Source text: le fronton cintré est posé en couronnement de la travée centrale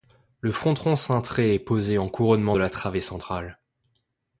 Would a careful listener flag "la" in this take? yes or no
no